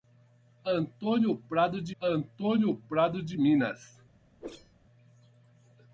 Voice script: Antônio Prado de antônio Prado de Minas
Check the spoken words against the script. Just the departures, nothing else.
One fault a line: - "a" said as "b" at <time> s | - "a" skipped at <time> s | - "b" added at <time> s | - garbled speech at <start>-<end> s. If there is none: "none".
none